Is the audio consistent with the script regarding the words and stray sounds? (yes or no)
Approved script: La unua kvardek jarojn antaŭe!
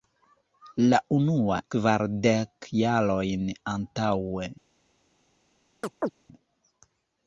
no